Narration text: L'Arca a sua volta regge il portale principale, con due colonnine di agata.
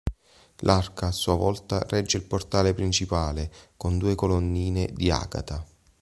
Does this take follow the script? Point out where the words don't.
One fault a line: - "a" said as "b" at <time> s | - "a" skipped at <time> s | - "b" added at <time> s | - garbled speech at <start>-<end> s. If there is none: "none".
none